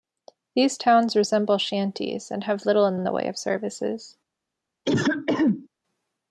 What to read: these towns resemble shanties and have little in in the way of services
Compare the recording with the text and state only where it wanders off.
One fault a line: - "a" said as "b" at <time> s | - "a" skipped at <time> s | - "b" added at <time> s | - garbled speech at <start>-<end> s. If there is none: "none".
none